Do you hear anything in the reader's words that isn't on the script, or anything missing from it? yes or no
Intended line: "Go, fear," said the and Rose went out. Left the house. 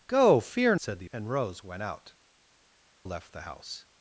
no